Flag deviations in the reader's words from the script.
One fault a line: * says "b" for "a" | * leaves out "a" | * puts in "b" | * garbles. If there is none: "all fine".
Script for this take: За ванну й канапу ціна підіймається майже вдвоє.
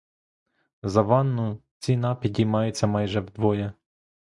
* leaves out "й канапу"